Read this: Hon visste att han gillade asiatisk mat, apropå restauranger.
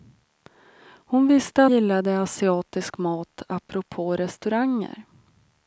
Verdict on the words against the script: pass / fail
fail